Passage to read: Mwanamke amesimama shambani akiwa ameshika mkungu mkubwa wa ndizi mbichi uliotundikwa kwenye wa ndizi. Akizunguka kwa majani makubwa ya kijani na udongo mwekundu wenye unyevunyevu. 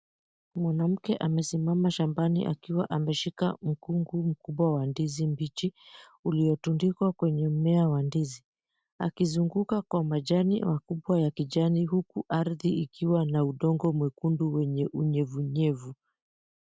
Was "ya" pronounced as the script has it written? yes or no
yes